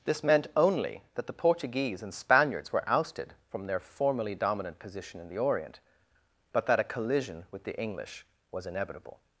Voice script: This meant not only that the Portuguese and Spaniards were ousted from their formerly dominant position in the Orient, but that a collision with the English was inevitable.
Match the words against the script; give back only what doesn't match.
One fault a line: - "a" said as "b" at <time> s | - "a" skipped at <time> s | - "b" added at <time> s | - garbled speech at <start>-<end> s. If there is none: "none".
- "not" skipped at 0.5 s